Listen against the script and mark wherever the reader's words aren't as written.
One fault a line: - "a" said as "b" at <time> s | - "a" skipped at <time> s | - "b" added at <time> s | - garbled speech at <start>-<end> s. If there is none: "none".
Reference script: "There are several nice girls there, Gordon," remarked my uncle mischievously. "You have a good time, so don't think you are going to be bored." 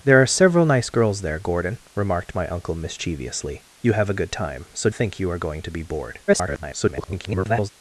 - "don't" skipped at 4.9 s
- garbled speech at 6.3-7.7 s